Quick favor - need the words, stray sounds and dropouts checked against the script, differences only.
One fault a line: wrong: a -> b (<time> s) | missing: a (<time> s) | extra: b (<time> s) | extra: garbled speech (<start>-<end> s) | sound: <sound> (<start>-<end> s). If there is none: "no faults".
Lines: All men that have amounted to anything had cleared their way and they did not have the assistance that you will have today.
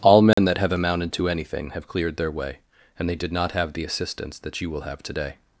sound: dropout (0.3-0.4 s)
wrong: had -> have (1.7 s)